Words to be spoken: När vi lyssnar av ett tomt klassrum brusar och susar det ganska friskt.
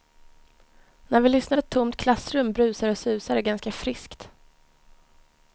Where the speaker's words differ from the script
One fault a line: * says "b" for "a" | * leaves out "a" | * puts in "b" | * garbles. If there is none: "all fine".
* leaves out "av"